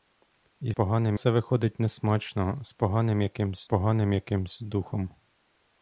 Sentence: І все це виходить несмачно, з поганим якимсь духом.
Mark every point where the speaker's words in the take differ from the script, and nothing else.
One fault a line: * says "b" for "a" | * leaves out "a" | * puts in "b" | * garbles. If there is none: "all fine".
* says "поганим" for "все"
* puts in "поганим якимсь"